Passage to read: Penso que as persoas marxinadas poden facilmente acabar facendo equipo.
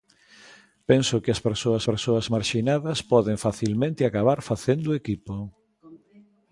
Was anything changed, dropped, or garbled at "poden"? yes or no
no